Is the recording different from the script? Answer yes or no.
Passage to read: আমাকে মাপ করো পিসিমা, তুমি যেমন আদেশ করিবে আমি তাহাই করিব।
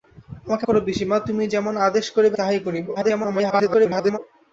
yes